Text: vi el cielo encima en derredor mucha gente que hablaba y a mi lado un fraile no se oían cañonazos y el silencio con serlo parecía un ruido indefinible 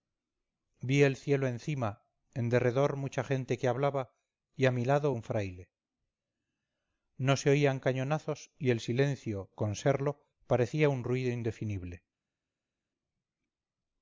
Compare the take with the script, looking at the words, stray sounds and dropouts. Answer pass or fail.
pass